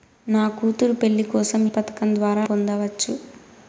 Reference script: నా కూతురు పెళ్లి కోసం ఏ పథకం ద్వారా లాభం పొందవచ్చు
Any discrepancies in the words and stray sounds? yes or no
yes